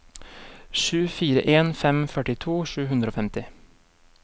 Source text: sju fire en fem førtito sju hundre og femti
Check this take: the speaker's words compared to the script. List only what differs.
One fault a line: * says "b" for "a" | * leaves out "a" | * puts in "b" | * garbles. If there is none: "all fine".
all fine